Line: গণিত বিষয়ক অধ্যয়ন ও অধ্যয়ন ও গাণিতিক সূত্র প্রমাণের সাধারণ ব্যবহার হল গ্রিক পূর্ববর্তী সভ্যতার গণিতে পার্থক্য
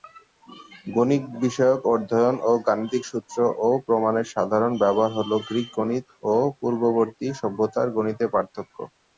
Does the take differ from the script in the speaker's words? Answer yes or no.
yes